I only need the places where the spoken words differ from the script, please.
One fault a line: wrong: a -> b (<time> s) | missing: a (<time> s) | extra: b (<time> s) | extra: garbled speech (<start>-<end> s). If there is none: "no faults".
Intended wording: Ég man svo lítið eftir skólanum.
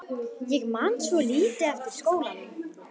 no faults